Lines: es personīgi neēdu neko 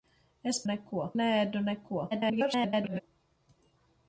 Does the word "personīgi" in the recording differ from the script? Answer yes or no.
yes